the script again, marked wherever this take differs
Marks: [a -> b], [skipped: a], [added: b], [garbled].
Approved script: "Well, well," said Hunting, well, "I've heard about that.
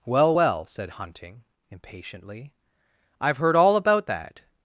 "Well, well," said Hunting, [well, -> impatiently] "I've heard [added: all] about that.